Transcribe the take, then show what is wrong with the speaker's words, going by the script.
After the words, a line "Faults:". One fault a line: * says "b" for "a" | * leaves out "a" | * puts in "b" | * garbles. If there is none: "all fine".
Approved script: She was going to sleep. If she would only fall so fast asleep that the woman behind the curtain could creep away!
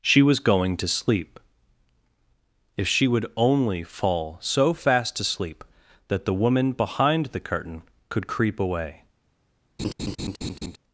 She was going to sleep. If she would only fall so fast asleep that the woman behind the curtain could creep away!
Faults:
all fine